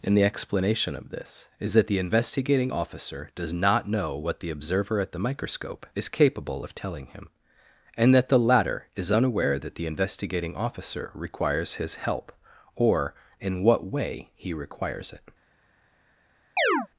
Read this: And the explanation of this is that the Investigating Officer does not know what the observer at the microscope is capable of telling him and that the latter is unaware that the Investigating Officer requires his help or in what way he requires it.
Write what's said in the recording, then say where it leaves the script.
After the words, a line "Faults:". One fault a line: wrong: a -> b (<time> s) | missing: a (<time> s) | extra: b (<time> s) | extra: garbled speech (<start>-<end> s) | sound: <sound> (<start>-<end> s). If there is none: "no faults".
And the explanation of this is that the Investigating Officer does not know what the observer at the microscope is capable of telling him and that the latter is unaware that the Investigating Officer requires his help or in what way he requires it.
Faults:
sound: chirp (16.6-16.9 s)